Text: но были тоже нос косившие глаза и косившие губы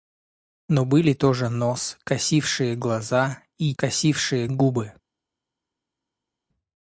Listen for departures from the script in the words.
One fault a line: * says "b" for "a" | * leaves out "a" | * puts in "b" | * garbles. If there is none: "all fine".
all fine